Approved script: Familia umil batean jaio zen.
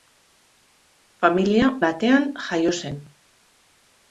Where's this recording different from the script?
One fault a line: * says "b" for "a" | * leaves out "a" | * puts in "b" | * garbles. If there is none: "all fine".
* leaves out "umil"